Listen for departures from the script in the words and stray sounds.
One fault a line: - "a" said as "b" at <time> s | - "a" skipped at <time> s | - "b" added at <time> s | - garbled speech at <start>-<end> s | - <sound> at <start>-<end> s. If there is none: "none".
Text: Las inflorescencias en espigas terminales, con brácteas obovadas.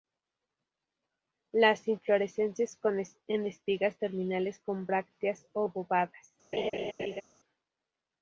- laugh at 6.5-7.2 s